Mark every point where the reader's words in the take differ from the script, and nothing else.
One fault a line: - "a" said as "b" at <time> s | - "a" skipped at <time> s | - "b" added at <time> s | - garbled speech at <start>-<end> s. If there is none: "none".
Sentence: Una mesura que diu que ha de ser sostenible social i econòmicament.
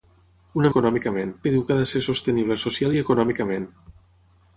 - "mesura" said as "econòmicament" at 0.7 s